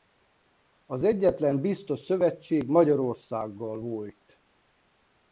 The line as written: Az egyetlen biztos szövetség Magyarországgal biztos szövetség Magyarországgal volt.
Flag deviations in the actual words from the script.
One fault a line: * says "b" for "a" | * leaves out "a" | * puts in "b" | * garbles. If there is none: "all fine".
* leaves out "biztos szövetség Magyarországgal"